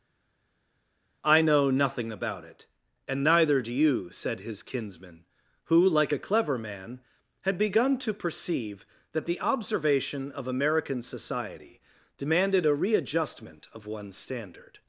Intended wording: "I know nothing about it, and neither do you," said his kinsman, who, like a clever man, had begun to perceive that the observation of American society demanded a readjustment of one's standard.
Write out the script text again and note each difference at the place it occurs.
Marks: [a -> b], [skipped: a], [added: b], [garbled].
"I know nothing about it, and neither do you," said his kinsman, who, like a clever man, had begun to perceive that the observation of American society demanded a readjustment of one's standard.